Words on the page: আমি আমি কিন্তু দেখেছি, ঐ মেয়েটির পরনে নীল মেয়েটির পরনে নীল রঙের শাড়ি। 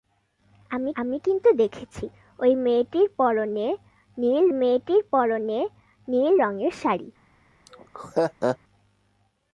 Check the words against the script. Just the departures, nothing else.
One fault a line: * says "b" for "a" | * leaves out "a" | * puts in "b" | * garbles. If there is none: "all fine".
all fine